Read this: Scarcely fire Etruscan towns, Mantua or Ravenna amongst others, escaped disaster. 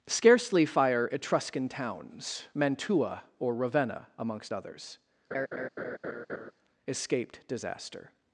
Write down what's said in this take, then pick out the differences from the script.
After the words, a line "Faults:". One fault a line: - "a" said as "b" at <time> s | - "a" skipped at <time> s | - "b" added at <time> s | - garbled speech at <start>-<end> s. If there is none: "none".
Scarcely fire Etruscan towns, Mantua or Ravenna amongst others, escaped disaster.
Faults:
none